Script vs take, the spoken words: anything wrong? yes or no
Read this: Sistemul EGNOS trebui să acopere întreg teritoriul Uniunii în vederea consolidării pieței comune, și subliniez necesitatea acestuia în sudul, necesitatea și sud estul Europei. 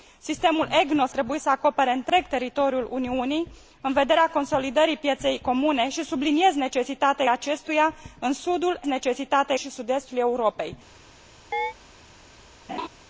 no